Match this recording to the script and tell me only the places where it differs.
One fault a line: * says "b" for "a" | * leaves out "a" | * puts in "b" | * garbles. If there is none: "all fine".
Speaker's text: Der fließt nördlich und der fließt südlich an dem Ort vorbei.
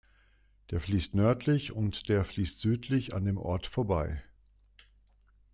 all fine